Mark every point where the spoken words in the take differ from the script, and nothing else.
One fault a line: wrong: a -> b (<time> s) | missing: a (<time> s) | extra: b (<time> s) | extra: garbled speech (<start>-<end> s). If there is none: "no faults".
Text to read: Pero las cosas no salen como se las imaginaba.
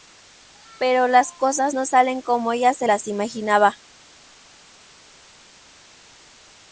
extra: ella (2.5 s)